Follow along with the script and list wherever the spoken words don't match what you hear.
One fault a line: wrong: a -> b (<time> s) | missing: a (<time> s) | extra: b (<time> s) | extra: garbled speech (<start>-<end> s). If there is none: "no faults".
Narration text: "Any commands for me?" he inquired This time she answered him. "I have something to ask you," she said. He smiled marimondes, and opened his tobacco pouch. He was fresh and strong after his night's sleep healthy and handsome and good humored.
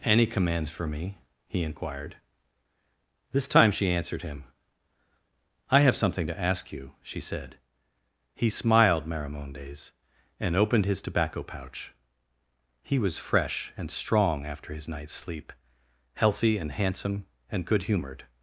no faults